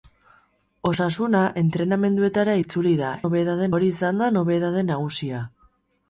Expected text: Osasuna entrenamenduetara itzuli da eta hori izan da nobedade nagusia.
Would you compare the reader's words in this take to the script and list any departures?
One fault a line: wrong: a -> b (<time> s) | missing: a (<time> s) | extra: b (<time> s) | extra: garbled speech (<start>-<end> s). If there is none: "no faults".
wrong: eta -> nobedade (3.2 s)